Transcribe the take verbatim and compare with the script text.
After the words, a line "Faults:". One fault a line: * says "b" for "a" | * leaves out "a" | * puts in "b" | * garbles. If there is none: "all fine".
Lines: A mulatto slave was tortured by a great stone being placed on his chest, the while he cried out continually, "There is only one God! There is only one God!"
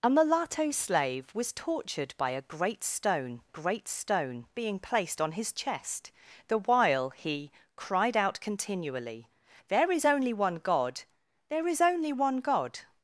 A mulatto slave was tortured by a great stone great stone being placed on his chest, the while he cried out continually, "There is only one God! There is only one God!"
Faults:
* puts in "great stone"